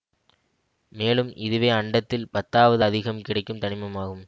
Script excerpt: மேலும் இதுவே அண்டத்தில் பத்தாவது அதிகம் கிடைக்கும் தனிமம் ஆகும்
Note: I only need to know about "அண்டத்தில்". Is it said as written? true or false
true